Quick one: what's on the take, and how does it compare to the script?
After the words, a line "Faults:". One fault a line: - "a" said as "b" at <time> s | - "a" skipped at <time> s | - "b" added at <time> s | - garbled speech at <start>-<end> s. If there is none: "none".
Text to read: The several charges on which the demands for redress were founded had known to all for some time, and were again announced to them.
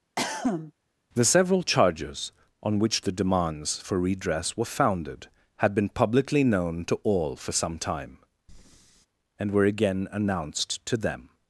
The several charges on which the demands for redress were founded had been publicly known to all for some time, and were again announced to them.
Faults:
- "been publicly" added at 5.7 s